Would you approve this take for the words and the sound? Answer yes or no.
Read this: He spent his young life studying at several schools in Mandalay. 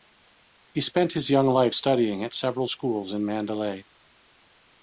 yes